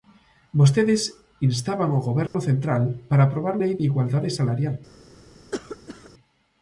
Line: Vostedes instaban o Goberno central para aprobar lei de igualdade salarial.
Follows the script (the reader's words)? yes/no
yes